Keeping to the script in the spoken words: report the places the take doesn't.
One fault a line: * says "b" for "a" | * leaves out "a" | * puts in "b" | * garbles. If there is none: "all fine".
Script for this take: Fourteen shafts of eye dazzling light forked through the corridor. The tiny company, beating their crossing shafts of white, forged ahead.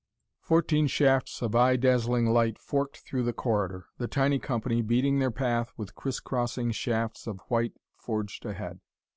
* puts in "path with criss"